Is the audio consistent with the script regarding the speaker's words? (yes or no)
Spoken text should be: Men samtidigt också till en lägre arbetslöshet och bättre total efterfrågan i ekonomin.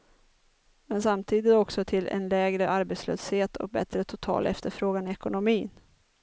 yes